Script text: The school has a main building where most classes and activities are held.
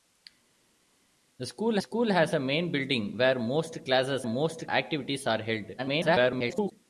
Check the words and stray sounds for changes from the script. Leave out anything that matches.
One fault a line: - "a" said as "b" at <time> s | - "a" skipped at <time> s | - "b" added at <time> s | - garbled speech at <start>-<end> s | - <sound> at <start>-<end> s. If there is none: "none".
- "school" added at 1.8 s
- "and" said as "most" at 4.3 s
- garbled speech at 5.8-6.7 s